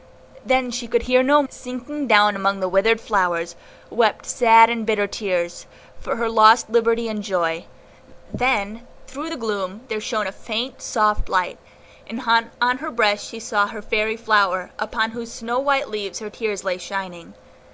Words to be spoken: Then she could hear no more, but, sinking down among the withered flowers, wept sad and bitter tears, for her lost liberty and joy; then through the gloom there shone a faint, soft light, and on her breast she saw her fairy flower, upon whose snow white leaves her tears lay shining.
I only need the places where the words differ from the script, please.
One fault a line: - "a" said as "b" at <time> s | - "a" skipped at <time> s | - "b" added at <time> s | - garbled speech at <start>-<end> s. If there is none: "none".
- "more but" skipped at 1.4 s